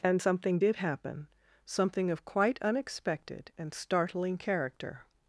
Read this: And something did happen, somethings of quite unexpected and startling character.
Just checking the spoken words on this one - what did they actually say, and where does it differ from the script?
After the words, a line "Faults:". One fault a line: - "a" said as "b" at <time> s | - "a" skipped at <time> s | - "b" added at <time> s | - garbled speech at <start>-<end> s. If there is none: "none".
And something did happen, something of quite unexpected and startling character.
Faults:
- "somethings" said as "something" at 1.6 s